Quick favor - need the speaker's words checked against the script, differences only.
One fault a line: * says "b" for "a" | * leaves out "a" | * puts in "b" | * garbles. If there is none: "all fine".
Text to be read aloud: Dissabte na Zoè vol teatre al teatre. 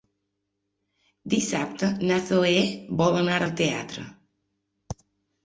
* says "anar" for "teatre"